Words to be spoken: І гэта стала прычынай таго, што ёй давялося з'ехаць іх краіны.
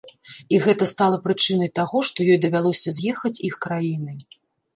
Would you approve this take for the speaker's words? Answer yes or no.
yes